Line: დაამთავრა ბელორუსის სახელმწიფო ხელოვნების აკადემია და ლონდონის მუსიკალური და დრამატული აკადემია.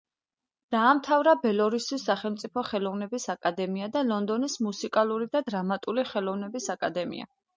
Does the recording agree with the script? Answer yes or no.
no